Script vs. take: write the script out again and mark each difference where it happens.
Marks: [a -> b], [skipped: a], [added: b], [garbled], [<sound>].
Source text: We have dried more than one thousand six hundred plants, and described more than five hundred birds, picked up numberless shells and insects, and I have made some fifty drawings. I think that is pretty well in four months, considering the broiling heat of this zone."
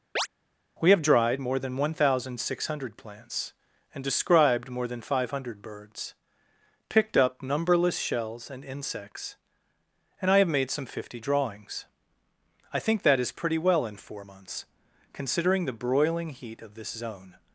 [chirp] We have dried more than one thousand six hundred plants, and described more than five hundred birds, picked up numberless shells and insects, and I have made some fifty drawings. I think that is pretty well in four months, considering the broiling heat of this zone."